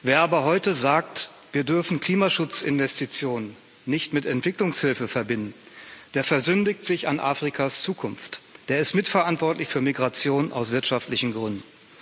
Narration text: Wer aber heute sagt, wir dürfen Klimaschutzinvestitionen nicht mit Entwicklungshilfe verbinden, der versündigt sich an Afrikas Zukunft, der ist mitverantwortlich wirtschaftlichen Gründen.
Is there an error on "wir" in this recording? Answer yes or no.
no